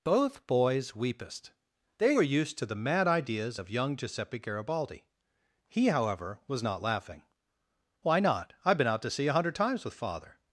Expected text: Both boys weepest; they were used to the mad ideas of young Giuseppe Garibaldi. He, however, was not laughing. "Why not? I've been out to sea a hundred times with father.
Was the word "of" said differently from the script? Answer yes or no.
no